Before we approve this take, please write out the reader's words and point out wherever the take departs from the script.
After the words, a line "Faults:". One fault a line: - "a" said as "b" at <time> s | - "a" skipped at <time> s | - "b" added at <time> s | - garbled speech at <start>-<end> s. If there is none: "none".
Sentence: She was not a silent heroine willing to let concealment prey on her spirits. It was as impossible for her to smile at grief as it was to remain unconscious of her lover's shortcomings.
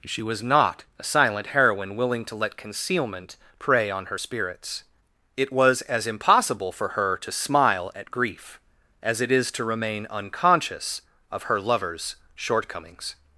She was not a silent heroine willing to let concealment prey on her spirits. It was as impossible for her to smile at grief as it is to remain unconscious of her lover's shortcomings.
Faults:
- "was" said as "is" at 9.3 s